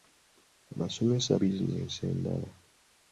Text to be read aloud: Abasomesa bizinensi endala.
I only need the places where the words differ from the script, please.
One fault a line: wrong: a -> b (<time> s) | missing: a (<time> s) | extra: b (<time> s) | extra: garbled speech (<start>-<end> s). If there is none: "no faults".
no faults